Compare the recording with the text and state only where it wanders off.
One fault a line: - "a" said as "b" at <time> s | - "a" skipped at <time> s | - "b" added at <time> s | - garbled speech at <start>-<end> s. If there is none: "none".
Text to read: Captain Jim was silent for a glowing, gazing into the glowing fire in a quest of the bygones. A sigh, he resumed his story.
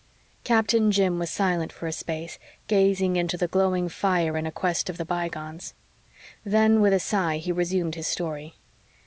- "glowing" said as "space" at 1.9 s
- "Then with" added at 6.4 s